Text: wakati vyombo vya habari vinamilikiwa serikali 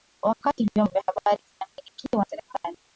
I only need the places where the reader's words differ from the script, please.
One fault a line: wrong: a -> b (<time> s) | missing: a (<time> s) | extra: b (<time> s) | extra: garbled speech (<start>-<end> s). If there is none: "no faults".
no faults